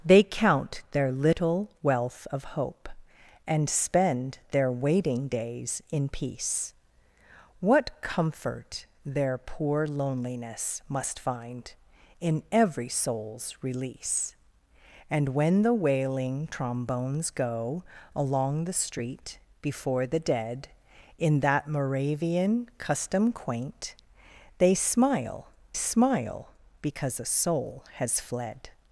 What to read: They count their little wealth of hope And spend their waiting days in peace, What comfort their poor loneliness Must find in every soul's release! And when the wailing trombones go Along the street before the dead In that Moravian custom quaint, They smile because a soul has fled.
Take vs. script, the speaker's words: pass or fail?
fail